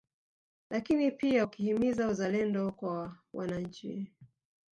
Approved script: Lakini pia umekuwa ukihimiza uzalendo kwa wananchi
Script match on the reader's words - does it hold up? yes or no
no